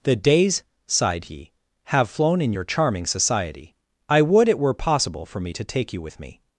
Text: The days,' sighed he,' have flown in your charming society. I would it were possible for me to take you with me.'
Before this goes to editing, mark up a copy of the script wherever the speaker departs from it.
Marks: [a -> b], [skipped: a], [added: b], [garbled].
The days,' sighed he,' have flown in your charming society. I would it were possible for me to take you with me.'